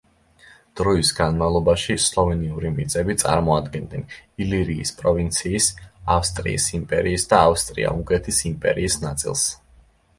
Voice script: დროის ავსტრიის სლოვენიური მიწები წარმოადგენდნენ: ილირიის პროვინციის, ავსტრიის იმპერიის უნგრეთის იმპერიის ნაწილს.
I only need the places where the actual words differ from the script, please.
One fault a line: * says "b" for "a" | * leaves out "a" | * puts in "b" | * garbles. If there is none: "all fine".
* says "განმავლობაში" for "ავსტრიის"
* puts in "და ავსტრია"